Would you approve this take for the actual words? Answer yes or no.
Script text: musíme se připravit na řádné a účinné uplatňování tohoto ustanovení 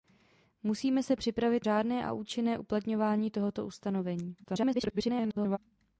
no